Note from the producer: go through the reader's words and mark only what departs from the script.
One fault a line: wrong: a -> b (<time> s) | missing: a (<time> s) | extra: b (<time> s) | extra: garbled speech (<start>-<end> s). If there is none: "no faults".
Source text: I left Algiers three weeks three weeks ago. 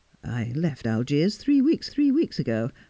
no faults